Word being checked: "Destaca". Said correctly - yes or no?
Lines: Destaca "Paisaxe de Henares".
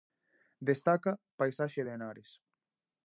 yes